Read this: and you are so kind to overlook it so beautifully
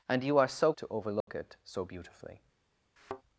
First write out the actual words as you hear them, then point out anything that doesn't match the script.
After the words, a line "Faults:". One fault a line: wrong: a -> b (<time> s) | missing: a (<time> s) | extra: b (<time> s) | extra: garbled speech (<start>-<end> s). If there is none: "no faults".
and you are so to overlook it so beautifully
Faults:
missing: kind (0.7 s)